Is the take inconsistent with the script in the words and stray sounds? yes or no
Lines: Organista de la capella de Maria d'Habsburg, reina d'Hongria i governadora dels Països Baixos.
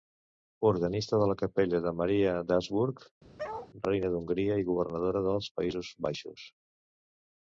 yes